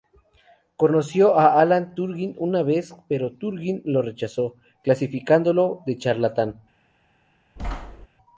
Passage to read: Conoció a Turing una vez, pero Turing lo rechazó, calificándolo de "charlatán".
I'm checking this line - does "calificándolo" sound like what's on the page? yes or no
yes